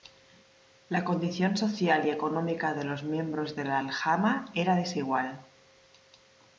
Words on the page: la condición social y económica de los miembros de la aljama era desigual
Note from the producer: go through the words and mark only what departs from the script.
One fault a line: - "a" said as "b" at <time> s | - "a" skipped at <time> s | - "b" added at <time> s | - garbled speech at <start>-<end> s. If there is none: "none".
none